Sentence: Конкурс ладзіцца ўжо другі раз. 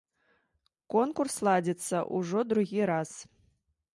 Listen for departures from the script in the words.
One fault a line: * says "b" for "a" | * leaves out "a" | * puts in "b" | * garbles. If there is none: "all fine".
all fine